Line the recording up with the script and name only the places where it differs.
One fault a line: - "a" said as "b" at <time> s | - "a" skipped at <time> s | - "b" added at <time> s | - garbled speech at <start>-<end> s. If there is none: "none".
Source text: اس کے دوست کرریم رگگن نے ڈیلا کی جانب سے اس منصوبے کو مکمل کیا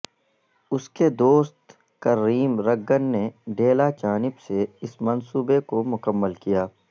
- "کی" skipped at 3.9 s